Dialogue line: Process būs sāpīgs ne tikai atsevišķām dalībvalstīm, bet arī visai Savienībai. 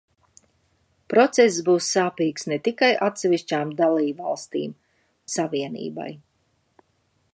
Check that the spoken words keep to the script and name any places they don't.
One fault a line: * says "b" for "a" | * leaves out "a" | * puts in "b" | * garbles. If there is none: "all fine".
* leaves out "bet arī visai"